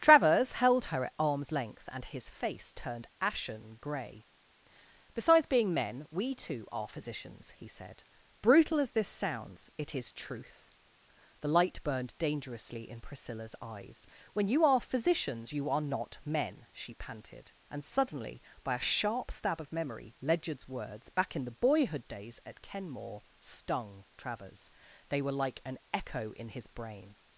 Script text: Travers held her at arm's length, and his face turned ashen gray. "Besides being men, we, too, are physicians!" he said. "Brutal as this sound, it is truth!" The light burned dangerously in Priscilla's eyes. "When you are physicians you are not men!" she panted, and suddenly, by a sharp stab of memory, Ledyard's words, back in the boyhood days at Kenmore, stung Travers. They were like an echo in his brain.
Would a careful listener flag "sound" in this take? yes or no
yes